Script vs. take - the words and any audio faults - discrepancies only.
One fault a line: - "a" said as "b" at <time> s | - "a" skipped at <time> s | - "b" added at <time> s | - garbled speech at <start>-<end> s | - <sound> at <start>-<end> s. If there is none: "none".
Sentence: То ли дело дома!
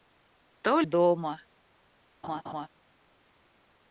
- "ли дело" skipped at 0.8 s
- laugh at 2.2-2.7 s